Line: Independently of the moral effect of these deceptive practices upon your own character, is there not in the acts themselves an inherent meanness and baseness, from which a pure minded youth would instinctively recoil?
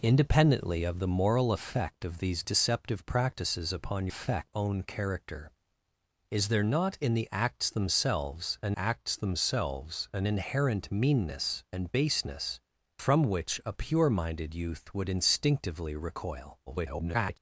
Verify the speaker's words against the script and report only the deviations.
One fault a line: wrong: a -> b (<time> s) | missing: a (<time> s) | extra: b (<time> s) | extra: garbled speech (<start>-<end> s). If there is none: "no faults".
wrong: your -> effect (4.1 s)
extra: acts themselves an (8.8 s)
extra: garbled speech (16.7-17.4 s)